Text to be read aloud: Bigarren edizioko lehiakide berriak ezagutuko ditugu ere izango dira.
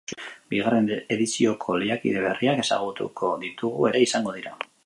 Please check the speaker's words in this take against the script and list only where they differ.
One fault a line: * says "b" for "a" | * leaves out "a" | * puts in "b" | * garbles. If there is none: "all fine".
all fine